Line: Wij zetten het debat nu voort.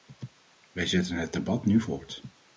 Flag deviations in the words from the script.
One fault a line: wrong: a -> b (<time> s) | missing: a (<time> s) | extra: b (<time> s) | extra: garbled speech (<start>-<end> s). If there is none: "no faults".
no faults